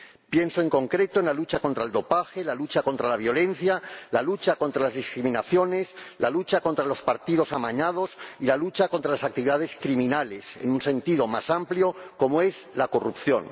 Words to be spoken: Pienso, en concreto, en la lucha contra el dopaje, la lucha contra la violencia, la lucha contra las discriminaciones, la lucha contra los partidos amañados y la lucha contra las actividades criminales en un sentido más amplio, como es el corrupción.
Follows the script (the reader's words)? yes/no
no